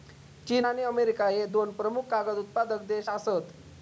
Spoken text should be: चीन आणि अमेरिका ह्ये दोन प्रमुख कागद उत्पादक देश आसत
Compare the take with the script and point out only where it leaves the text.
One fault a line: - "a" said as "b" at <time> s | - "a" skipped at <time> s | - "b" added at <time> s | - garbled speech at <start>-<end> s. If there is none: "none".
none